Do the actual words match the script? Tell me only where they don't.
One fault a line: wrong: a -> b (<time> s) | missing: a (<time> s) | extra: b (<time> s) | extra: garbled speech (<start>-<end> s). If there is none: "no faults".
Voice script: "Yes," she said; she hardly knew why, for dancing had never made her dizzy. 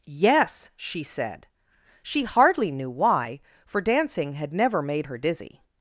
no faults